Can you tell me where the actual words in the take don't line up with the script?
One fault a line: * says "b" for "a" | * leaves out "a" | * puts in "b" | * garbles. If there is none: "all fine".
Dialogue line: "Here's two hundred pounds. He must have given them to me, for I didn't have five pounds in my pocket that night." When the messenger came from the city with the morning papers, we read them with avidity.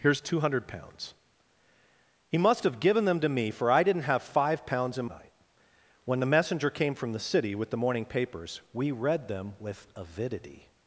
* leaves out "my pocket that"